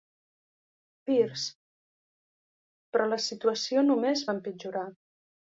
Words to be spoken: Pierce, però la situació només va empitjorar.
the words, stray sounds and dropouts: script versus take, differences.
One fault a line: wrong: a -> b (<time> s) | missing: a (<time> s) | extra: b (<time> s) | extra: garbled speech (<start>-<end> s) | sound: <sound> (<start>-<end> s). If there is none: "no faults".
no faults